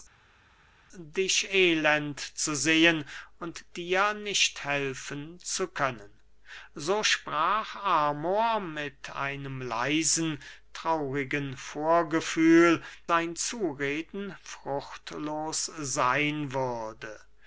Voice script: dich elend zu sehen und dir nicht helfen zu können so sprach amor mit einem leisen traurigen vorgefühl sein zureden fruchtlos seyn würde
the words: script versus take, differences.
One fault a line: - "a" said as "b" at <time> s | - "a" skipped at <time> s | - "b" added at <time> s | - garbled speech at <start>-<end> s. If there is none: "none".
none